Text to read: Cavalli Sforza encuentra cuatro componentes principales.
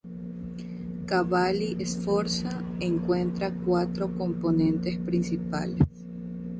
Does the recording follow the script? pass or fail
pass